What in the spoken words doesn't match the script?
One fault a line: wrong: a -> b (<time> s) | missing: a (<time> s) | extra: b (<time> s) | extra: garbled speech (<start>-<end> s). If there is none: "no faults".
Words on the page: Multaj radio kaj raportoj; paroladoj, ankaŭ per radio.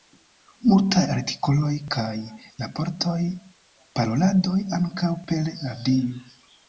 wrong: radio -> artikoloj (1.1 s)